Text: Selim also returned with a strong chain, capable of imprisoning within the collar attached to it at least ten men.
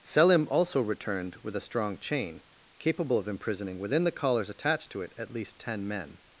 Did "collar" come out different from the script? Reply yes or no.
yes